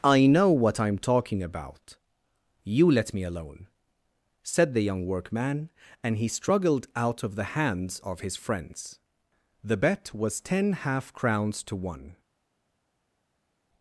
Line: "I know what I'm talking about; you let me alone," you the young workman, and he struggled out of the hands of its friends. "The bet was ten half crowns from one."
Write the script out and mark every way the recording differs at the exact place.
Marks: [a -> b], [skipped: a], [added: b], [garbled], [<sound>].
"I know what I'm talking about; you let me alone," [you -> said] the young workman, and he struggled out of the hands of [its -> his] friends. "The bet was ten half crowns [from -> to] one."